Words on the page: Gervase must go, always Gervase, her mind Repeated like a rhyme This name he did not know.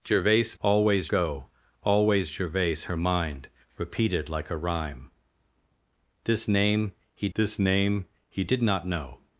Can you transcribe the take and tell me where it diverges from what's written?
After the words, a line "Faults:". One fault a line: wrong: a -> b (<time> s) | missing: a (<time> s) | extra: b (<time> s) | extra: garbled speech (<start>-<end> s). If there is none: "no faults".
Gervase always go, always Gervase, her mind Repeated like a rhyme This name he This name he did not know.
Faults:
wrong: must -> always (0.6 s)
extra: This name he (7.3 s)